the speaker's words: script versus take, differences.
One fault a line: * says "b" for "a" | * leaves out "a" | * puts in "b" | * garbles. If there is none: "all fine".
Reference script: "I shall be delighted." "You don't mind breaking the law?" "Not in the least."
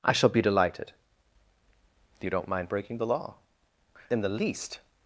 * leaves out "Not"